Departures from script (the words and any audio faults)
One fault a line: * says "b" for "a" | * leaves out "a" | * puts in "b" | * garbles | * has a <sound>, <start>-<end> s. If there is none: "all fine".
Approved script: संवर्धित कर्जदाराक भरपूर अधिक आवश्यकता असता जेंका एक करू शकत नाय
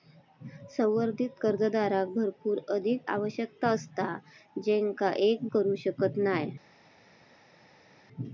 all fine